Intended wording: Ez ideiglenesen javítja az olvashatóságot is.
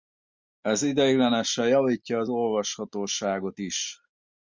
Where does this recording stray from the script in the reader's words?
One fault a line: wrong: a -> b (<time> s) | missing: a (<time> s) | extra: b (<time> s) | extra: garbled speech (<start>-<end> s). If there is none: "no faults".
no faults